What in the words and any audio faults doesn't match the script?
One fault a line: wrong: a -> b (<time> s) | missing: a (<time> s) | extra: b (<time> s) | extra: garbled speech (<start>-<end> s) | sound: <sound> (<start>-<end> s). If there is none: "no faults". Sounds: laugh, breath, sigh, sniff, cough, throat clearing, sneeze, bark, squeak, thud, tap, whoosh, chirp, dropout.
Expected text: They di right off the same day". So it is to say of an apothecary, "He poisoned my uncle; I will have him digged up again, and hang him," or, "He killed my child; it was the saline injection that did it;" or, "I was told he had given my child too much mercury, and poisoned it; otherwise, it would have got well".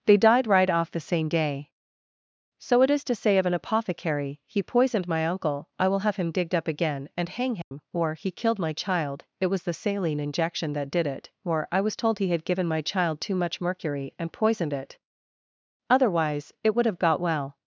wrong: di -> died (0.2 s)
sound: dropout (7.6-7.7 s)